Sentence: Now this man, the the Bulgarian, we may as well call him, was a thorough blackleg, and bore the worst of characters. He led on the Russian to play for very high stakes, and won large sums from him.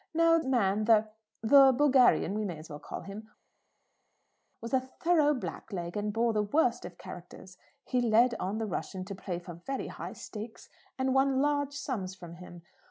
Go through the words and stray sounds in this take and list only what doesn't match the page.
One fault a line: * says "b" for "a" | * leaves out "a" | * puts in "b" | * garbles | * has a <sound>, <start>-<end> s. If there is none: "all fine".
* leaves out "this"